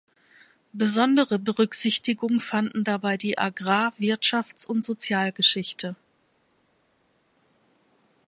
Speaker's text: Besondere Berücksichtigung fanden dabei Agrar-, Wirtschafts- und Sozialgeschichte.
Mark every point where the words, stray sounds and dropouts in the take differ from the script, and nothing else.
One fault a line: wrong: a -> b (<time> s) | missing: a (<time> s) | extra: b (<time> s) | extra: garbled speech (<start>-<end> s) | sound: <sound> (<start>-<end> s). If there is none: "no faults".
extra: die (3.2 s)